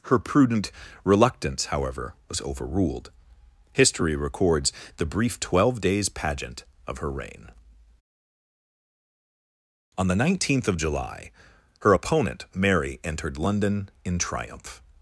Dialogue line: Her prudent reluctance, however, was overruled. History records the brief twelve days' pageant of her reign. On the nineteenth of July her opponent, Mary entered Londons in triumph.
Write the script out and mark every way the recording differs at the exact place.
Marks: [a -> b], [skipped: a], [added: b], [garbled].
Her prudent reluctance, however, was overruled. History records the brief twelve days' pageant of her reign. On the nineteenth of July her opponent, Mary entered [Londons -> London] in triumph.